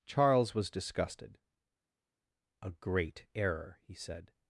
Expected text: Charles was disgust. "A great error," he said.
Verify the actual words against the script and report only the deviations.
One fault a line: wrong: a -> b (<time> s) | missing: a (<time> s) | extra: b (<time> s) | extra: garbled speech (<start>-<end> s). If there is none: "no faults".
wrong: disgust -> disgusted (0.7 s)